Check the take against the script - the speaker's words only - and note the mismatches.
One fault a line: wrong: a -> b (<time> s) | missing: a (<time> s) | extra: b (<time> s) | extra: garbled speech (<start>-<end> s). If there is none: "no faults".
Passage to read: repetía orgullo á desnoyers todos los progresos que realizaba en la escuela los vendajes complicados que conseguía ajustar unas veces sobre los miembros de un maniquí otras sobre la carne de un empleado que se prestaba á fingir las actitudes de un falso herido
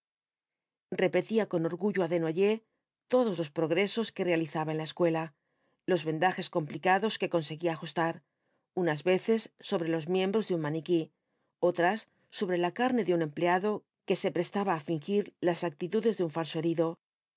extra: con (1.5 s)